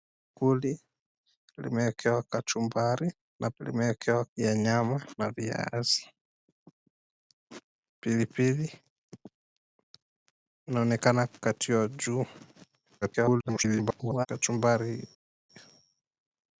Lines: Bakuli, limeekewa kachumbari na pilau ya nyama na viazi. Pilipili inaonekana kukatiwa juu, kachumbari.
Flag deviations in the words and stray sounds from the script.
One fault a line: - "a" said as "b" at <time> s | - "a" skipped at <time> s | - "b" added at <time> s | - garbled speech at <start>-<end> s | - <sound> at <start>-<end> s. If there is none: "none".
- "pilau" said as "limeekewa" at 3.6 s
- garbled speech at 13.0-14.3 s